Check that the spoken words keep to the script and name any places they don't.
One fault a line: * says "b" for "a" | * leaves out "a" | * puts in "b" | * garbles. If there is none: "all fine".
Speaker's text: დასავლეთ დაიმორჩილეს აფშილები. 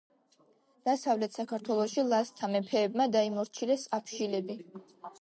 * puts in "საქართველოში ლაზთა მეფეებმა"